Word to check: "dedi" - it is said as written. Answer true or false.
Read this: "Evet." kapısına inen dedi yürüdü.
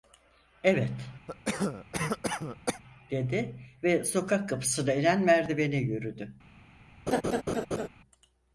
false